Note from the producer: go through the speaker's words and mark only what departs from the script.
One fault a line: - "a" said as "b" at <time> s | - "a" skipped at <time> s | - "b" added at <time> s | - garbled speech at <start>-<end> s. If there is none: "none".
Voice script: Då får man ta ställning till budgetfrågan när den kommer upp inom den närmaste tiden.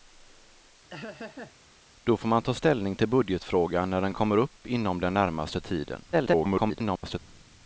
- garbled speech at 6.1-7.2 s